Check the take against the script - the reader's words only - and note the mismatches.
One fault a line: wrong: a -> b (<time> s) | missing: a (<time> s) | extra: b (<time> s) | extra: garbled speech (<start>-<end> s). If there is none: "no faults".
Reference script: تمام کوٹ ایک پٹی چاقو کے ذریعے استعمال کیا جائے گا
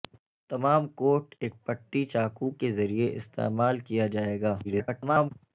extra: garbled speech (4.6-5.3 s)